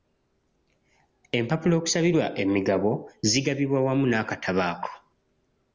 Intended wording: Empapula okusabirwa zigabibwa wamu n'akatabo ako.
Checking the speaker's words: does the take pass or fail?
fail